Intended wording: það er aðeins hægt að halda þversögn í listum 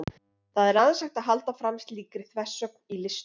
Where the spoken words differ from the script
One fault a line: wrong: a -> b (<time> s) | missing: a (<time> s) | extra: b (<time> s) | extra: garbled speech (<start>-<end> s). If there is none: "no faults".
extra: fram slíkri (1.6 s)